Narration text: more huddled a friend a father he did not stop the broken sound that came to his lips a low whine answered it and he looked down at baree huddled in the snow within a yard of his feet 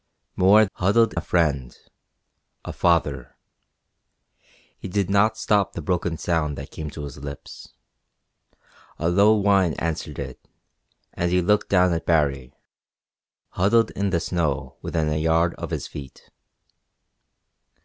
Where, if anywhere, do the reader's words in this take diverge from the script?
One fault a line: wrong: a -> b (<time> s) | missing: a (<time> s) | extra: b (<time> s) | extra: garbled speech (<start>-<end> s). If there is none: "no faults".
no faults